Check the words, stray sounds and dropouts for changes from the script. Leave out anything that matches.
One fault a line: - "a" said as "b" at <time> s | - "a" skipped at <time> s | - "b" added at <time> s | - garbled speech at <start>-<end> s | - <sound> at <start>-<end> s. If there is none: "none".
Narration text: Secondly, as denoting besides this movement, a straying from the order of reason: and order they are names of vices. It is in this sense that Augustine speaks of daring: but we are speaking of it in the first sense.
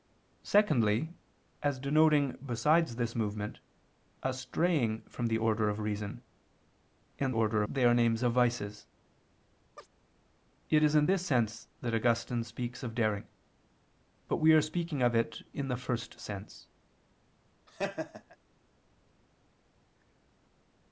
- chirp at 9.8-9.9 s
- laugh at 17.7-18.4 s